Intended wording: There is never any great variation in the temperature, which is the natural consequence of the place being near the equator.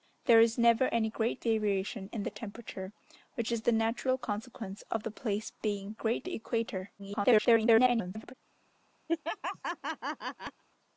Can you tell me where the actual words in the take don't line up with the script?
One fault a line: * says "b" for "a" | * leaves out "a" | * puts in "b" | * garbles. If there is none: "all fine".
* says "great" for "near"
* garbles